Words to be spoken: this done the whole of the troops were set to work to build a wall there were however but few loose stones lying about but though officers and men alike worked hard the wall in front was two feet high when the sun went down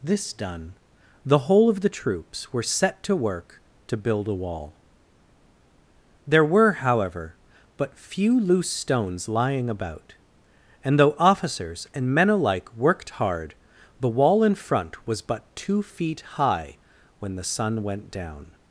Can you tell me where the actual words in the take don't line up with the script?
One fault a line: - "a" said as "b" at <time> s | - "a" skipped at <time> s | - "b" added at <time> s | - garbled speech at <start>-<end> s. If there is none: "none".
- "but" said as "and" at 10.8 s
- "but" added at 15.2 s